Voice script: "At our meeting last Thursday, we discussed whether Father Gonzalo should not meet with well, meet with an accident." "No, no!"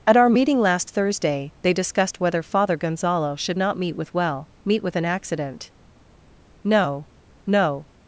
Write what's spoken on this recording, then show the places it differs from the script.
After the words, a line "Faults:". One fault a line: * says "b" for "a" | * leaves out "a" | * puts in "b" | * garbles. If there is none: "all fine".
"At our meeting last Thursday, they discussed whether Father Gonzalo should not meet with well, meet with an accident." "No, no!"
Faults:
* says "they" for "we"